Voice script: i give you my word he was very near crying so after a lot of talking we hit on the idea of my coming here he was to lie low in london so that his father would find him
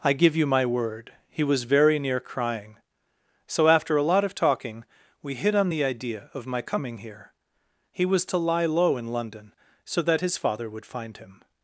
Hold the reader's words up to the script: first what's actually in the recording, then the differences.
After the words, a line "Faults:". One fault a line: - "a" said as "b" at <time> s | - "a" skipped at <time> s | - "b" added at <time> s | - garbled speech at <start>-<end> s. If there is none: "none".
i give you my word he was very near crying so after a lot of talking we hit on the idea of my coming here he was to lie low in london so that his father would find him
Faults:
none